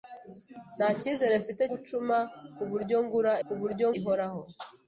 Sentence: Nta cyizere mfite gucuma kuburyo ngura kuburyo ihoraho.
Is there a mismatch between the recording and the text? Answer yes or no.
no